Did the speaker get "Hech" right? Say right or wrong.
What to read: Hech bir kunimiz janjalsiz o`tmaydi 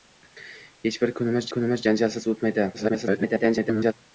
right